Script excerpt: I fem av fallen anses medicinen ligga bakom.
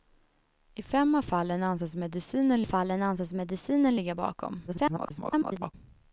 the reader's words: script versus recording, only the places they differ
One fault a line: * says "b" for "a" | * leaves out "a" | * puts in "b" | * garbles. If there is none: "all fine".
* puts in "fallen anses medicinen"
* garbles